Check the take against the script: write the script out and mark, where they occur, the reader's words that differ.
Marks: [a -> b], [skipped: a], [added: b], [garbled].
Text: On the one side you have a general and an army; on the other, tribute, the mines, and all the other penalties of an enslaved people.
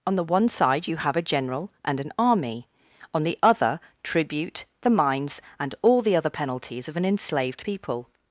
On the one side you have a general and an army; on the other, tribute, the mines, and all the other penalties of an enslaved people.